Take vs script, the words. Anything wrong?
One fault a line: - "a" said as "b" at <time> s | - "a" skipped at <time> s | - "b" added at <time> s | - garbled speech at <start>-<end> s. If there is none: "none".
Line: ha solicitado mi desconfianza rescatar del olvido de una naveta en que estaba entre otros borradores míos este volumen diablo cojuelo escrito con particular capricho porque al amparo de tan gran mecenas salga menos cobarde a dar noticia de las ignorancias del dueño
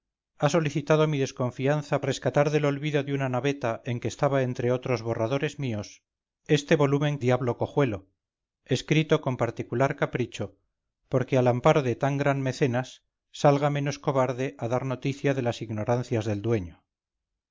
none